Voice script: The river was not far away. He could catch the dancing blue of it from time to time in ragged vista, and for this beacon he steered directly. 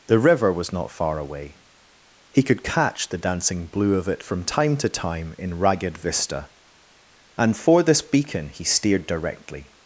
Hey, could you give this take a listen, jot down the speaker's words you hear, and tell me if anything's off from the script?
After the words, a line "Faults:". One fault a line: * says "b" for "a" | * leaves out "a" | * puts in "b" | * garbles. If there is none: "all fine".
The river was not far away. He could catch the dancing blue of it from time to time in ragged vista, and for this beacon he steered directly.
Faults:
all fine